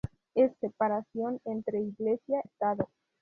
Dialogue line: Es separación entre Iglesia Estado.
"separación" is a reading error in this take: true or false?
false